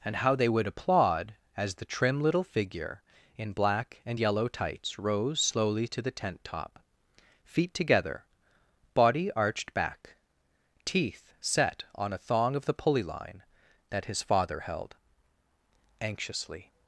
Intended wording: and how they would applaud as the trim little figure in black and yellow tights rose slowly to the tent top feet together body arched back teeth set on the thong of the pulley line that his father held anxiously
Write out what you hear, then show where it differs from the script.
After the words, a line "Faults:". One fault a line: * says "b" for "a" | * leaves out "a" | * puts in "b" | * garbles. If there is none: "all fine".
and how they would applaud as the trim little figure in black and yellow tights rose slowly to the tent top feet together body arched back teeth set on a thong of the pulley line that his father held anxiously
Faults:
* says "a" for "the"